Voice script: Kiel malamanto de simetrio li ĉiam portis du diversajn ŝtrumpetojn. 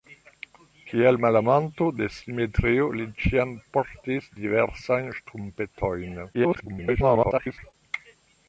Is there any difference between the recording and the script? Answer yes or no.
yes